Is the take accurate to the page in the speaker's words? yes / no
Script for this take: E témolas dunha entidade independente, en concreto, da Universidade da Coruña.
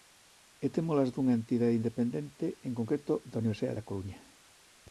yes